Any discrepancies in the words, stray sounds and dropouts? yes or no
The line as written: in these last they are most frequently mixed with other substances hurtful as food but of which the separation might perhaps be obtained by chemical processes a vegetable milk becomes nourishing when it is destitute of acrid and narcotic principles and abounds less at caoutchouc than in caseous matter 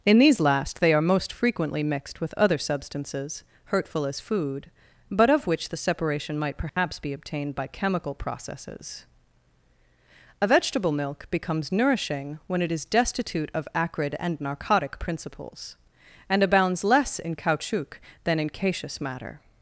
yes